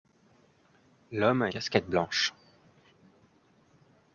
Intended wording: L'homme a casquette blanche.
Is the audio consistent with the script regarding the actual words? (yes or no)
yes